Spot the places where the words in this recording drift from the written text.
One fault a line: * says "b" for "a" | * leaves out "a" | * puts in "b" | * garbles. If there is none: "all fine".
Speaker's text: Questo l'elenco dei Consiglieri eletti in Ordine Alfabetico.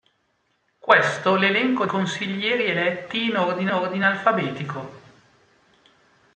* leaves out "dei"
* puts in "Ordine"